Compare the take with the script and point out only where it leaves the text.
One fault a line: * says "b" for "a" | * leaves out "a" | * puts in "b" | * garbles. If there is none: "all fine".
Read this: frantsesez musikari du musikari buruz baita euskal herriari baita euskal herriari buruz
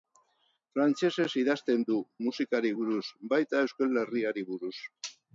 * says "idazten" for "musikari"
* leaves out "baita euskal herriari"